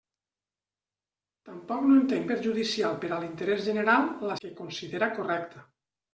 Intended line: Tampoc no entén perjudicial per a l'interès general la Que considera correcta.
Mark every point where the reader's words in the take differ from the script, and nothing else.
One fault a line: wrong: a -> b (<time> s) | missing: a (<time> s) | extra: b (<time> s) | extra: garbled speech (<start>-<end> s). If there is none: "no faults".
no faults